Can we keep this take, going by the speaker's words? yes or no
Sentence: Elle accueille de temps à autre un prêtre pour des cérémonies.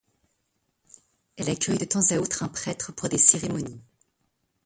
yes